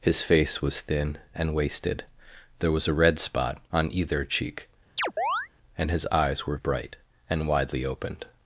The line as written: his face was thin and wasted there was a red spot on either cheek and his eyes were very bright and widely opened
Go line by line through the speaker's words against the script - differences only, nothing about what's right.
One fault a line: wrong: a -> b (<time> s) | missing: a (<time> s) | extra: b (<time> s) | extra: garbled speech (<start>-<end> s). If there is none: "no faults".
missing: very (6.6 s)